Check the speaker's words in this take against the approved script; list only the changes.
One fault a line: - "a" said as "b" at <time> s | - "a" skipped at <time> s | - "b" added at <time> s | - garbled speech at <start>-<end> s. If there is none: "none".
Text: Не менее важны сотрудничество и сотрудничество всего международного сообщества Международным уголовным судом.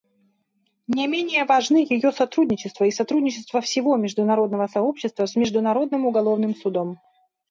- "ее" added at 1.9 s
- "с" added at 5.2 s